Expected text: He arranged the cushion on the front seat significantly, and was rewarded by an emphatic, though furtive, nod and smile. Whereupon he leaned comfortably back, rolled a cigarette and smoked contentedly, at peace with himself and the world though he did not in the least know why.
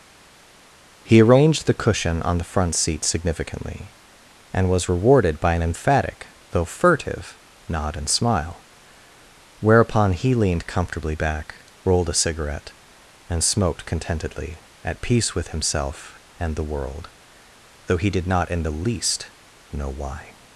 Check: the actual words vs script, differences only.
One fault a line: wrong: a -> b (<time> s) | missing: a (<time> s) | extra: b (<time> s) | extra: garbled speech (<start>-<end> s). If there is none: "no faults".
no faults